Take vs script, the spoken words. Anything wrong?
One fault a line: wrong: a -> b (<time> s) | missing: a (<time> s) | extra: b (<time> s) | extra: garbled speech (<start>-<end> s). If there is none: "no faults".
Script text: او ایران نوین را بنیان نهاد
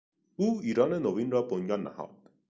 no faults